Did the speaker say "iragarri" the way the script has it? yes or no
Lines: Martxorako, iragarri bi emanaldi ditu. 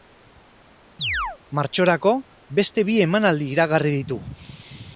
no